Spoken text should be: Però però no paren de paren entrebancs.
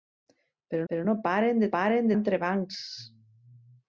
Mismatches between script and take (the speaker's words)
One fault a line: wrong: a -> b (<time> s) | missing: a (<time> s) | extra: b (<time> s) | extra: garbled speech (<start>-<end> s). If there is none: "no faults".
no faults